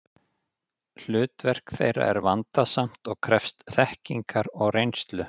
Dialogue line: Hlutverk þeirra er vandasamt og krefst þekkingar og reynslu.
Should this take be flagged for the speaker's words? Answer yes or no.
no